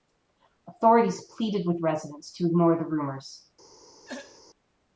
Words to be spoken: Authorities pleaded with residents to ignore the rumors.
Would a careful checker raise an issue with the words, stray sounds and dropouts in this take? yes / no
yes